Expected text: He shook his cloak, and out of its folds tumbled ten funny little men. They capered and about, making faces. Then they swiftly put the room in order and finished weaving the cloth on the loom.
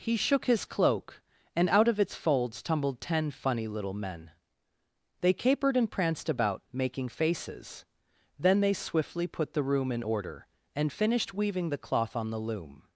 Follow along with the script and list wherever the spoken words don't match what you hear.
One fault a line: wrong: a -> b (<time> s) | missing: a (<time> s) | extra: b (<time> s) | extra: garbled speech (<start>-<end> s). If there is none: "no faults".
extra: pranced (5.9 s)